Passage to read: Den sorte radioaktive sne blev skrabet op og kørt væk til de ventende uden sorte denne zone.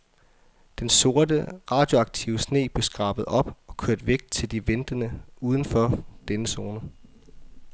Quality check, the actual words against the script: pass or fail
fail